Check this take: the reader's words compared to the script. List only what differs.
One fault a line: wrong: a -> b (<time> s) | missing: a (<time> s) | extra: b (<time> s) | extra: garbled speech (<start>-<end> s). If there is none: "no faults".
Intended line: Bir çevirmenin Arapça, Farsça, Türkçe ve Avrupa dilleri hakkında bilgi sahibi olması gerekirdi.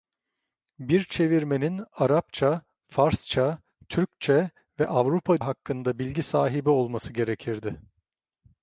missing: dilleri (5.4 s)